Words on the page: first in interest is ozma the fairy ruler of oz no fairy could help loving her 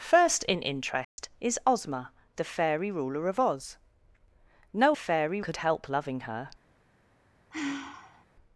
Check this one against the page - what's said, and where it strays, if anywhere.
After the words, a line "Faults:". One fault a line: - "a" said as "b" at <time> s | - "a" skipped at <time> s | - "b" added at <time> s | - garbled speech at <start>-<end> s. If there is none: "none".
first in interest is ozma the fairy ruler of oz no fairy could help loving her
Faults:
none